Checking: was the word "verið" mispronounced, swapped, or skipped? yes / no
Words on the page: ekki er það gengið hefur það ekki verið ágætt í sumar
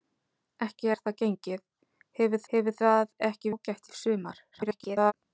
yes